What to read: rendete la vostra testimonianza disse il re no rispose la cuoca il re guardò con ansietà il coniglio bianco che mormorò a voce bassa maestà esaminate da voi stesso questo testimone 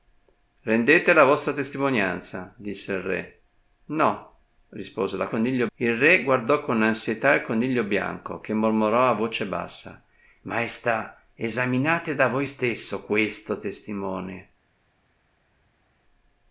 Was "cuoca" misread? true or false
true